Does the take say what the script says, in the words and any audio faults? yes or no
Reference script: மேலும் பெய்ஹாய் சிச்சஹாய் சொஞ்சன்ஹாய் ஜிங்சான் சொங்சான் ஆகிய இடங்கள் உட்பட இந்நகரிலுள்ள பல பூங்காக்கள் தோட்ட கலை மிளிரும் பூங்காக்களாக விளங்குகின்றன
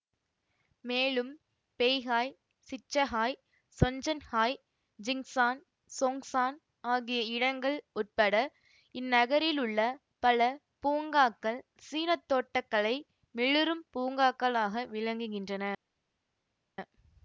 no